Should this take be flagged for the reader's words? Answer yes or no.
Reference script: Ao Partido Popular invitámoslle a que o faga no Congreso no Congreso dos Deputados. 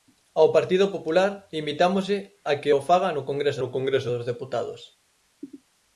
no